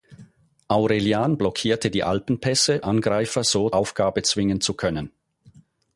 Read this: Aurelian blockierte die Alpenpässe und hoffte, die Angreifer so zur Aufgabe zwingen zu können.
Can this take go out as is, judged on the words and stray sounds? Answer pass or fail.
fail